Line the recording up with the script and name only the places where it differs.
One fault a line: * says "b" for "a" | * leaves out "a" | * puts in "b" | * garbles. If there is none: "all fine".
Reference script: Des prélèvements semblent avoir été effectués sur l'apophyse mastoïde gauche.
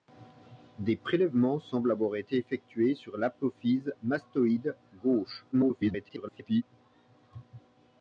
* garbles